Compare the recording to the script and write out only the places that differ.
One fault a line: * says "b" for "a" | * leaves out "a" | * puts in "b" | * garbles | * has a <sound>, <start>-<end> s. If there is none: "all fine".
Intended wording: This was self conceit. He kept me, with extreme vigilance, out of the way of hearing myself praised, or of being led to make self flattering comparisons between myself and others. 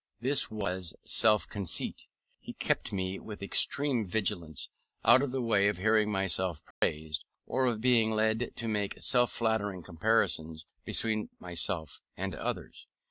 * has a dropout, 6.7-6.8 s